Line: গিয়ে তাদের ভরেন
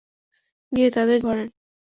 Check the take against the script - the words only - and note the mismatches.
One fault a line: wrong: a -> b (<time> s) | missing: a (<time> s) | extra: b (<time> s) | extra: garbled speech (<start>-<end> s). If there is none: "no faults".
no faults